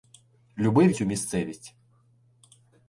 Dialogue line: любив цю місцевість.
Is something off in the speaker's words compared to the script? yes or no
no